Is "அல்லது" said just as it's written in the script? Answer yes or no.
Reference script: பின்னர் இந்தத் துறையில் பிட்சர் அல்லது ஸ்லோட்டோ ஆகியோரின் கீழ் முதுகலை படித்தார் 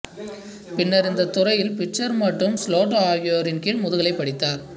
no